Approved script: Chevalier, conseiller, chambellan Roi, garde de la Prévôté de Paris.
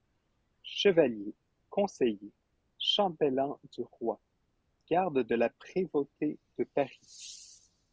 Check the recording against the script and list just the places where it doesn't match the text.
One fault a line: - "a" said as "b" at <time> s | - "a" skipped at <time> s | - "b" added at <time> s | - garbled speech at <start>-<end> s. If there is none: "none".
- "du" added at 3.7 s